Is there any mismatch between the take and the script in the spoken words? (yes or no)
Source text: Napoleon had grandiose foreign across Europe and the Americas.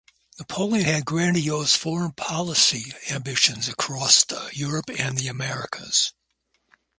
yes